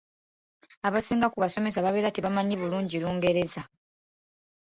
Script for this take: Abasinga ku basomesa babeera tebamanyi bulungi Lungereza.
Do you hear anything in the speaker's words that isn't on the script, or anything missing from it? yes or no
no